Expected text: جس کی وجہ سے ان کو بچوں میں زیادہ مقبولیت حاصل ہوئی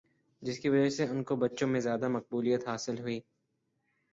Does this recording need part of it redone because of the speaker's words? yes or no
no